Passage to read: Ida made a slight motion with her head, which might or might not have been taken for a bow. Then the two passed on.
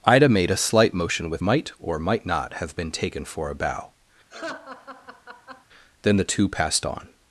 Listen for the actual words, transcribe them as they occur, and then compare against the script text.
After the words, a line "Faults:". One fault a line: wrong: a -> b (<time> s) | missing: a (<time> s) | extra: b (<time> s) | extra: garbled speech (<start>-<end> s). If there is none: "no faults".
Ida made a slight motion with might or might not have been taken for a bow. Then the two passed on.
Faults:
missing: her head which (1.4 s)